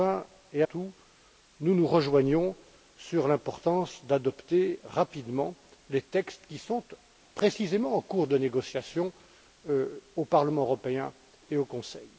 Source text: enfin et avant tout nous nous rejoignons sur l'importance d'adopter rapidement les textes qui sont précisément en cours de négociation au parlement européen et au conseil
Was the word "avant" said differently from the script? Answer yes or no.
yes